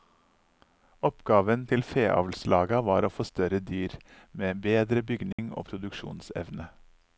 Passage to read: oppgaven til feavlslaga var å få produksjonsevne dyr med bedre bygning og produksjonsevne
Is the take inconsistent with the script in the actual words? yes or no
yes